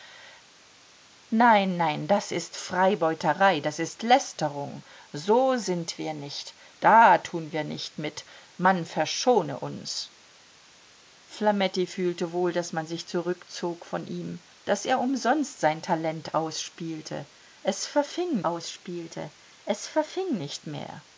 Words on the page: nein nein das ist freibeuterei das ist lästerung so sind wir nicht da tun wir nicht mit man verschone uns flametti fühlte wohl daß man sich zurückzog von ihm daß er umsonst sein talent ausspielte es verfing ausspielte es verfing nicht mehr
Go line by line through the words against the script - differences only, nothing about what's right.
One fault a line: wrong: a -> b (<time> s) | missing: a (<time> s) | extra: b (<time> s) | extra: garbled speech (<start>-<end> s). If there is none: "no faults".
no faults